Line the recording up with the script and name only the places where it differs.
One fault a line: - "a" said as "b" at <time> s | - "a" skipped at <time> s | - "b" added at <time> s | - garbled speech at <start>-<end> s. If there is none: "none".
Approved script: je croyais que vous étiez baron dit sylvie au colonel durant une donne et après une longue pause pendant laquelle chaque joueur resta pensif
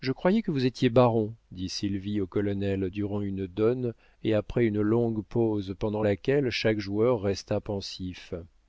none